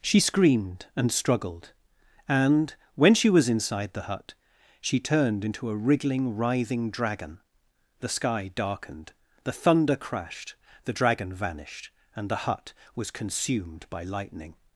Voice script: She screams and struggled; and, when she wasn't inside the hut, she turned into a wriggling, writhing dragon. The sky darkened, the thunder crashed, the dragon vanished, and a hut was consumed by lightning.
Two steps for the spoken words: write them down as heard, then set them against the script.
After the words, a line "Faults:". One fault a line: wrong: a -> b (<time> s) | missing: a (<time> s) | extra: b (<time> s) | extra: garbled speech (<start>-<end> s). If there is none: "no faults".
She screamed and struggled; and, when she was inside the hut, she turned into a wriggling, writhing dragon. The sky darkened, the thunder crashed, the dragon vanished, and the hut was consumed by lightning.
Faults:
wrong: screams -> screamed (0.2 s)
wrong: wasn't -> was (3.3 s)
wrong: a -> the (12.3 s)